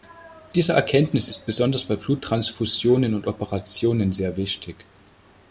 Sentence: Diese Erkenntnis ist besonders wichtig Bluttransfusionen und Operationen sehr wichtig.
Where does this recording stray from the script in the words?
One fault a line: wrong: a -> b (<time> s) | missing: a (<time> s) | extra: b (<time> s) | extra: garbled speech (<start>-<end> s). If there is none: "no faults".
wrong: wichtig -> bei (1.8 s)